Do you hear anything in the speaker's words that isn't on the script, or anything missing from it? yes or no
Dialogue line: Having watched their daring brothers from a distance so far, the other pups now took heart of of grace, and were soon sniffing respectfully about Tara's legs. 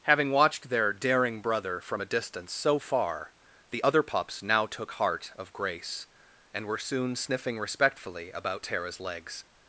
yes